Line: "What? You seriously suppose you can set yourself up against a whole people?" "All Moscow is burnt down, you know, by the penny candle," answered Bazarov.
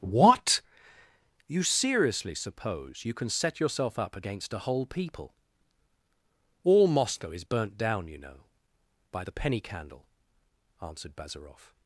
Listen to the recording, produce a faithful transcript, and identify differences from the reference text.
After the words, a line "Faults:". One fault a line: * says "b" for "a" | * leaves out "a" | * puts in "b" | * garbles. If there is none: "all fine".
"What? You seriously suppose you can set yourself up against a whole people?" "All Moscow is burnt down, you know, by the penny candle," answered Bazarov.
Faults:
all fine